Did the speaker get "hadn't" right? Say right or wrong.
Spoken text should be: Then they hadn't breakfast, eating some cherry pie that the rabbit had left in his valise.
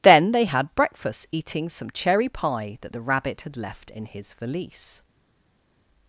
wrong